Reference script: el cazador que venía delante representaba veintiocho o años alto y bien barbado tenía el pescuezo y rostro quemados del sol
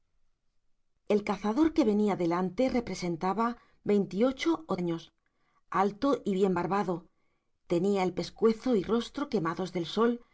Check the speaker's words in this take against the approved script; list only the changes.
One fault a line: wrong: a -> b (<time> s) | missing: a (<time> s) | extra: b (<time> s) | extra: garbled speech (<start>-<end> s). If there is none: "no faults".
no faults